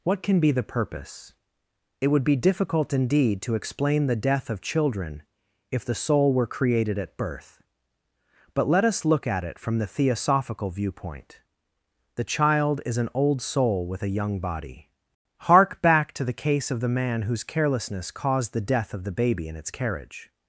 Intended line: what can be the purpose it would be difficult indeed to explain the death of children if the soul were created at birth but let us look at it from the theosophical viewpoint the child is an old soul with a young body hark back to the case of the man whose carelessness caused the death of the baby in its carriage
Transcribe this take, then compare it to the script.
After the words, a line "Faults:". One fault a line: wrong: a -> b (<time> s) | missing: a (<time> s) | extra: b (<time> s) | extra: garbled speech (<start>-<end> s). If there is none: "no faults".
what can be the purpose it would be difficult indeed to explain the death of children if the soul were created at birth but let us look at it from the theosophical viewpoint the child is an old soul with a young body hark back to the case of the man whose carelessness caused the death of the baby in its carriage
Faults:
no faults